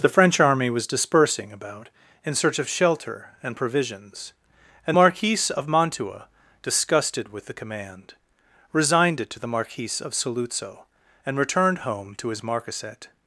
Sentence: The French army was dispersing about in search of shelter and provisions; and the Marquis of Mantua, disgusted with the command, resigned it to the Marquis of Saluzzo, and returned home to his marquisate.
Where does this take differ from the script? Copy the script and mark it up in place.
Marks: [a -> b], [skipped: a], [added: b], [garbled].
The French army was dispersing about in search of shelter and provisions; and [skipped: the] Marquis of Mantua, disgusted with the command, resigned it to the Marquis of Saluzzo, and returned home to his marquisate.